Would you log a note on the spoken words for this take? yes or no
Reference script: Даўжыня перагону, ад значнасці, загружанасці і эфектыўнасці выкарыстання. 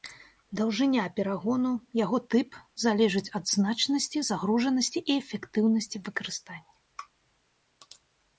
yes